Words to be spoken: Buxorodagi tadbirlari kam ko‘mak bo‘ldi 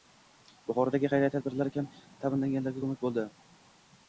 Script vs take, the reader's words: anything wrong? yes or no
yes